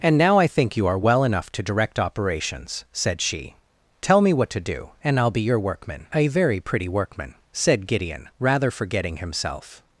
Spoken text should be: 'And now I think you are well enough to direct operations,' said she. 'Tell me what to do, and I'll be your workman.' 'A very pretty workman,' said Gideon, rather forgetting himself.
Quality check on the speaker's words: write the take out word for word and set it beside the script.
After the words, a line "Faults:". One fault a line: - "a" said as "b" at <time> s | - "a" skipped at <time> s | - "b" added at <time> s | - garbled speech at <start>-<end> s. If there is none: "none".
'And now I think you are well enough to direct operations,' said she. 'Tell me what to do, and I'll be your workman.' 'A very pretty workman,' said Gideon, rather forgetting himself.
Faults:
none